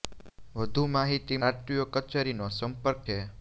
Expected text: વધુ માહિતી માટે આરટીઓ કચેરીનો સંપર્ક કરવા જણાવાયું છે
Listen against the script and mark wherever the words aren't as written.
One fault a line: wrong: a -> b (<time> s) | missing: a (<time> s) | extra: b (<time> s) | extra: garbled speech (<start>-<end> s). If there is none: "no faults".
missing: માટે (1.4 s)
missing: કરવા જણાવાયું (3.1 s)